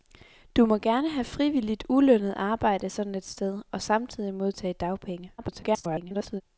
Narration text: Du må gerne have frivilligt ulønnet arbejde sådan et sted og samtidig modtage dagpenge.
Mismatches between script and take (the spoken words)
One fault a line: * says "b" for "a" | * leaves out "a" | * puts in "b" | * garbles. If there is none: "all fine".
* garbles